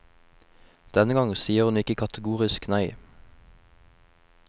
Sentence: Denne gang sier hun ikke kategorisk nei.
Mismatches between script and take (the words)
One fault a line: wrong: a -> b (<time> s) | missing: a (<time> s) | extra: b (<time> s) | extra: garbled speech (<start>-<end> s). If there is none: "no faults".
no faults